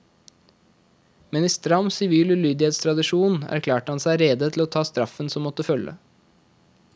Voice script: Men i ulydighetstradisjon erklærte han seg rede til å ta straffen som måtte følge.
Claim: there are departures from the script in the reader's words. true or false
true